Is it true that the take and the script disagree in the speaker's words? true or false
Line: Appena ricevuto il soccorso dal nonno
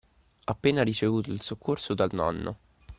false